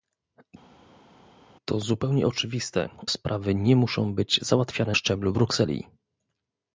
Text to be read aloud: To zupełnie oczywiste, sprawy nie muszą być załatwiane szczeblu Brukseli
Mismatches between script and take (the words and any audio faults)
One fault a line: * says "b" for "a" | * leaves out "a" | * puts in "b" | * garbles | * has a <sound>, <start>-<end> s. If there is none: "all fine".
all fine